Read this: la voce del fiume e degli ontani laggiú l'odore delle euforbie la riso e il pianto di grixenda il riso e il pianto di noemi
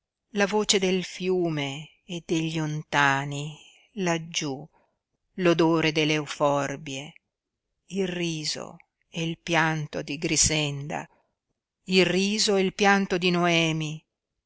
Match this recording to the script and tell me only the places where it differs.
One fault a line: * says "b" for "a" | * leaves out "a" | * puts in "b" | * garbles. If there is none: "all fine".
* says "il" for "la"